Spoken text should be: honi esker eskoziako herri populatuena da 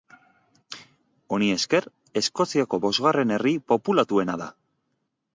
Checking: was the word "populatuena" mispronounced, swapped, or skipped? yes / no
no